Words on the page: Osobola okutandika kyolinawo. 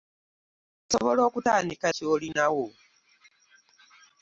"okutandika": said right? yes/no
yes